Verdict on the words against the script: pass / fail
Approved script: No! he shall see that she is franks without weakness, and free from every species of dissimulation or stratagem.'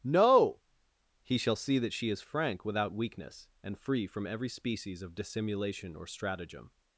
fail